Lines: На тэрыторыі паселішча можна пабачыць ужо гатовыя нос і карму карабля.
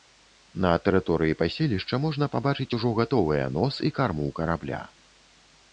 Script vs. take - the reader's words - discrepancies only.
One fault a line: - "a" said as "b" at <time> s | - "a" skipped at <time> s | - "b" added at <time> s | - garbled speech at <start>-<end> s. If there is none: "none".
none